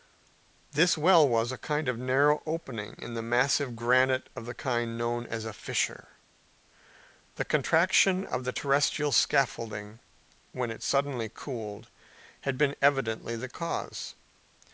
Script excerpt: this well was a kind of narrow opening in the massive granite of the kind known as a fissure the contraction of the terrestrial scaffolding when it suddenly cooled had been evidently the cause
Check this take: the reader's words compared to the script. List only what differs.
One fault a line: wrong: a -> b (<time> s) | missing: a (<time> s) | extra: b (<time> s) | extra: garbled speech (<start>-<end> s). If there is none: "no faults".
no faults